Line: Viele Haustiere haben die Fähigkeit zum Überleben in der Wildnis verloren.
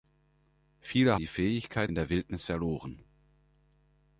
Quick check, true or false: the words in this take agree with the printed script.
false